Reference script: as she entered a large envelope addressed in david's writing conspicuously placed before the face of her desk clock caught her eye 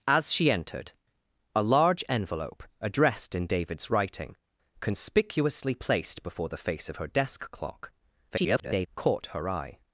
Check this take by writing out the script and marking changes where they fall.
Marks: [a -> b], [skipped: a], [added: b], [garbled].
as she entered a large envelope addressed in david's writing conspicuously placed before the face of her desk clock [garbled] caught her eye